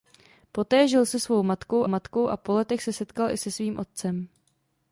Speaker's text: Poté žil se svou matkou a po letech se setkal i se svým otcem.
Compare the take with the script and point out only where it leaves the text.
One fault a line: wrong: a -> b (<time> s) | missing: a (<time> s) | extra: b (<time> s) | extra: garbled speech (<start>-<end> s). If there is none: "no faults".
extra: matkou (1.9 s)